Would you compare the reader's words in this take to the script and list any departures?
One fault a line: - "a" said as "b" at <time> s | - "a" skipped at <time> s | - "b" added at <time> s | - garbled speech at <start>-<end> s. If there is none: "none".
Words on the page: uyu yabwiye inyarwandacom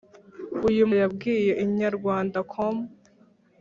none